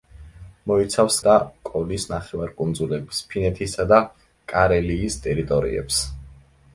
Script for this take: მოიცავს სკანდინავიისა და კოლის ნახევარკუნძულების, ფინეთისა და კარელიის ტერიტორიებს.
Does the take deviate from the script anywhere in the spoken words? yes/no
yes